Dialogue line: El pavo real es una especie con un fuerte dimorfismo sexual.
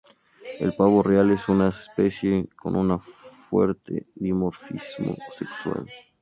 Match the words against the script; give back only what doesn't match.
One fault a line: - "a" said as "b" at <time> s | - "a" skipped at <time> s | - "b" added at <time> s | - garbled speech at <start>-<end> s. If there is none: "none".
none